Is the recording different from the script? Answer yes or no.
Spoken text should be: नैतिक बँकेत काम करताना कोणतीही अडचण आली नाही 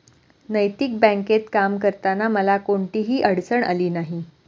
yes